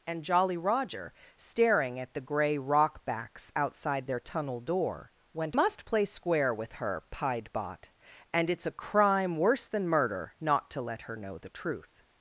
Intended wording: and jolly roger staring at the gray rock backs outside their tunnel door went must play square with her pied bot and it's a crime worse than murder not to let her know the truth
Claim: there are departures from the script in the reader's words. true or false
false